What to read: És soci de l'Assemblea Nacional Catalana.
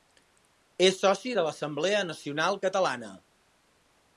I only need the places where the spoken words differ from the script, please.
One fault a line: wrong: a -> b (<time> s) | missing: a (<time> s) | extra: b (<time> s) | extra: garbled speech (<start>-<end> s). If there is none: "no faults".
no faults